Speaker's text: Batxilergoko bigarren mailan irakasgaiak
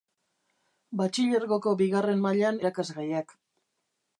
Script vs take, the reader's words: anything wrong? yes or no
no